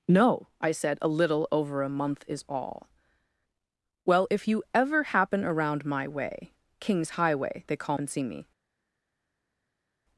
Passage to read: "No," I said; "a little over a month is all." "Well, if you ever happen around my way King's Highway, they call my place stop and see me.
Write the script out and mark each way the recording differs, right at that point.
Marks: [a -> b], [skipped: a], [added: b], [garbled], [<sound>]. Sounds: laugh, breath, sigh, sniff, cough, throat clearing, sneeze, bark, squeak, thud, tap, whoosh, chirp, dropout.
"No," I said; "a little over a month is all." "Well, if you ever happen around my way King's Highway, they call [skipped: my place stop] and see me.